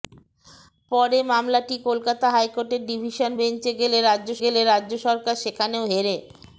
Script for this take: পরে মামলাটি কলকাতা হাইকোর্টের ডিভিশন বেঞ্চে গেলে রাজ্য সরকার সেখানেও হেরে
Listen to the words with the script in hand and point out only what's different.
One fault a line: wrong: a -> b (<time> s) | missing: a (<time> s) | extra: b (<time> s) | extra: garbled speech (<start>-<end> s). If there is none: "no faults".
extra: গেলে রাজ্য (4.4 s)